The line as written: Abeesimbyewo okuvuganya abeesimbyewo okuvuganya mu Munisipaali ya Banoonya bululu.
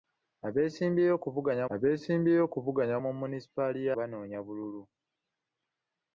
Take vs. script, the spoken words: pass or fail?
pass